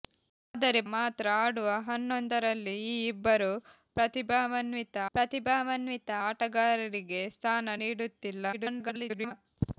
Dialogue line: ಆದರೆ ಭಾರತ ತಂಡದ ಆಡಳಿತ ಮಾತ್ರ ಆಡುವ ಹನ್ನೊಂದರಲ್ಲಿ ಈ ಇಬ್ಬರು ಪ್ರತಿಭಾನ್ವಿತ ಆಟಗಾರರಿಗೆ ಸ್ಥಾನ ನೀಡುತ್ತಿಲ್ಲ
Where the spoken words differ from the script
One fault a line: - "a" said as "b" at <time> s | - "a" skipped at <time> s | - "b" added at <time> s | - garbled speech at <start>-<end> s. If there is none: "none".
- "ಭಾರತ ತಂಡದ ಆಡಳಿತ" skipped at 0.8 s
- "ಪ್ರತಿಭಾನ್ವಿತ" added at 5.1 s
- garbled speech at 8.5-9.3 s